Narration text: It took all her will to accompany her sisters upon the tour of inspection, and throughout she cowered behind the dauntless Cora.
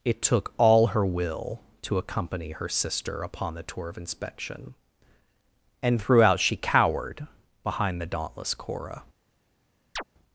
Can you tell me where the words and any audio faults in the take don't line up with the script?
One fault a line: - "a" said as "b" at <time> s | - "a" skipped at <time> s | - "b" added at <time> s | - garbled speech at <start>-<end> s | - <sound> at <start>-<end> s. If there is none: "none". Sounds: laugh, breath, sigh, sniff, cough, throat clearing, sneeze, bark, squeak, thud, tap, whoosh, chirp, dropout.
- "sisters" said as "sister" at 2.7 s
- chirp at 10.0-10.0 s